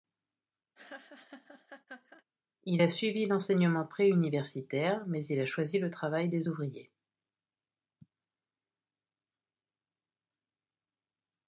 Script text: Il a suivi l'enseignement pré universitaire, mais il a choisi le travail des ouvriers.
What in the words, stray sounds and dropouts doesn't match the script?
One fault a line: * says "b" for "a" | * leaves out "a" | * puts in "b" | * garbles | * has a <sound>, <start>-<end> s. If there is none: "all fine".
* has a laugh, 0.7-2.2 s